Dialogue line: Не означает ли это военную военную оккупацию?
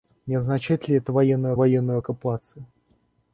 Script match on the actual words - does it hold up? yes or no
yes